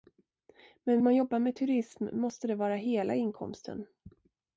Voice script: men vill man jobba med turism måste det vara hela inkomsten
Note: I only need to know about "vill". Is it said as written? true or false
false